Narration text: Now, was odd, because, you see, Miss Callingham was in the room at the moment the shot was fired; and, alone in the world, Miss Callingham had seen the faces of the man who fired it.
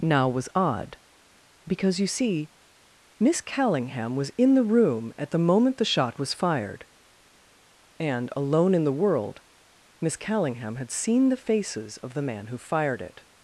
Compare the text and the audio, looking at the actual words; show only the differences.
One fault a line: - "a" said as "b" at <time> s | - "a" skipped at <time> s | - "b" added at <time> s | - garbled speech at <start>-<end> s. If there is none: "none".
none